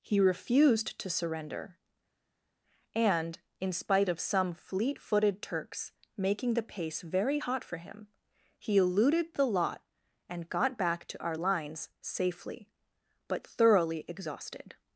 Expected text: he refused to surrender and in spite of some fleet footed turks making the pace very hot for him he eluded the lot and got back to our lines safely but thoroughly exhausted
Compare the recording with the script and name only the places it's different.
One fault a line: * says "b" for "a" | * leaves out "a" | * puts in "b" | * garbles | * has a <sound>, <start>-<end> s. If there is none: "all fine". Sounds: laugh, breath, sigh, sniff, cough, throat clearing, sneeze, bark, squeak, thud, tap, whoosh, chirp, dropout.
all fine